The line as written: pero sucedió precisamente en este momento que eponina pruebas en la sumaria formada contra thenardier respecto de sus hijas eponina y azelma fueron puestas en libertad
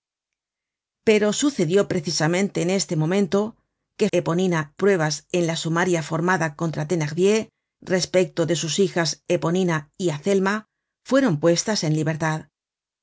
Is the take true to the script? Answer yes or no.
yes